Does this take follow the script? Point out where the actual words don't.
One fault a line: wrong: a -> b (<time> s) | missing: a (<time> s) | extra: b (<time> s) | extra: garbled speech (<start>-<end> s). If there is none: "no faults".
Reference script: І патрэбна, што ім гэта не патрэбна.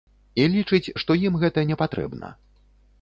wrong: патрэбна -> лічыць (0.5 s)